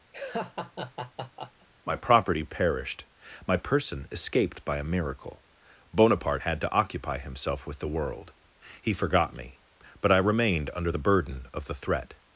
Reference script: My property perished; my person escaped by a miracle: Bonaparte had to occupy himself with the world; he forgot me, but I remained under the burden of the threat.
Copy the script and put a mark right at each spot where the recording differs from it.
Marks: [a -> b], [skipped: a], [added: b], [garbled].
My property perished; my person escaped by a miracle: Bonaparte had to occupy himself with the world; he forgot me, but I remained under the burden of the threat.